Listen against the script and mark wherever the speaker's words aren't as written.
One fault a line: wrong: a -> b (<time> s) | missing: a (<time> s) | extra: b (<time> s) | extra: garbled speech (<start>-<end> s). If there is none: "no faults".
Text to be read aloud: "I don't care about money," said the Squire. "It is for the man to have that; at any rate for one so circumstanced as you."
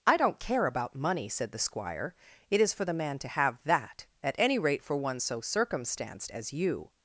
no faults